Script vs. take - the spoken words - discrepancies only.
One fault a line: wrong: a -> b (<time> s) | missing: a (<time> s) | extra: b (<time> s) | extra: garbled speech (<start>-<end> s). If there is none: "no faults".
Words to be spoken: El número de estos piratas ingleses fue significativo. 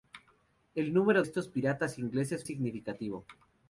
missing: de (1.2 s)
missing: fue (2.5 s)